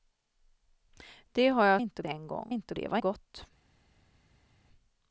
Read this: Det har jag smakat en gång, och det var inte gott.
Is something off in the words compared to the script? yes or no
yes